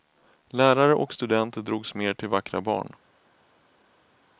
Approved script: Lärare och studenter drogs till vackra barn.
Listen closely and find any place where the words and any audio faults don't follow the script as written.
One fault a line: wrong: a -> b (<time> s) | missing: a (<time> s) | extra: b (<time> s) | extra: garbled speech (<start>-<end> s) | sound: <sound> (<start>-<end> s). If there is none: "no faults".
extra: mer (1.9 s)